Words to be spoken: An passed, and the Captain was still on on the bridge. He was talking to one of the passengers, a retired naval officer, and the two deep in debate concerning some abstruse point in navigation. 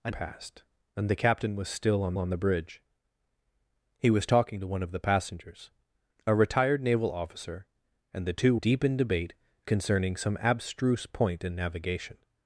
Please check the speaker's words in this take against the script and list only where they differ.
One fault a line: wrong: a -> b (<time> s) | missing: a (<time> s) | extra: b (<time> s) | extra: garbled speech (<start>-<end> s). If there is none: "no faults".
no faults